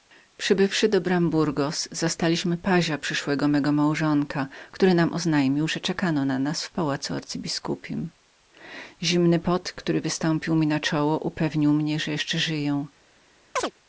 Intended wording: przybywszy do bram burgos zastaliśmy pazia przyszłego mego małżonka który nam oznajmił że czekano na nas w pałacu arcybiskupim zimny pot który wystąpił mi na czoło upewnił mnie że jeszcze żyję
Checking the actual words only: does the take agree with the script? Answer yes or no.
yes